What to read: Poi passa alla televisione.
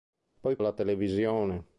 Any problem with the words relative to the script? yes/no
yes